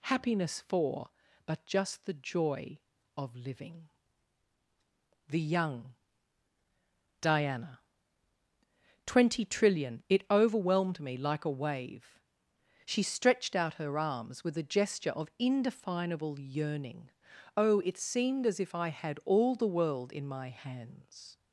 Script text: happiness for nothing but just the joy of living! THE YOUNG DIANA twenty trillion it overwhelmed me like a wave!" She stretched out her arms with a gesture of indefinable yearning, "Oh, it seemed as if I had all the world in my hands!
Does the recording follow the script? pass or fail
fail